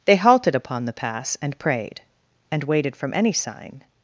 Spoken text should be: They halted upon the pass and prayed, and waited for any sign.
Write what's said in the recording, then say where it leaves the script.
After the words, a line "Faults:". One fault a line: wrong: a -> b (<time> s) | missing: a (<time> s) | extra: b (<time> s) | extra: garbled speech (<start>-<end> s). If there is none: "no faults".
They halted upon the pass and prayed, and waited from any sign.
Faults:
wrong: for -> from (3.0 s)